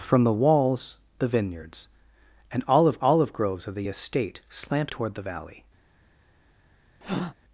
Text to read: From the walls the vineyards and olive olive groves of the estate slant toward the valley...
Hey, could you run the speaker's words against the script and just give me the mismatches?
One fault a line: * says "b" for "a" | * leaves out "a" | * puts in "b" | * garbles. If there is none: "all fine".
all fine